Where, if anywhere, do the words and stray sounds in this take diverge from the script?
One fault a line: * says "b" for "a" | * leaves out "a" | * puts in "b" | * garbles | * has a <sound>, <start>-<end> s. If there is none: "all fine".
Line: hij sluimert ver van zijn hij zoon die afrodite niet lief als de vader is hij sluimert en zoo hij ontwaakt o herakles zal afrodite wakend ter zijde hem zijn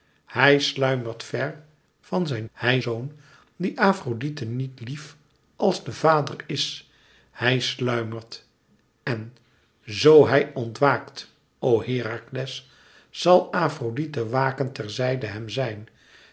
all fine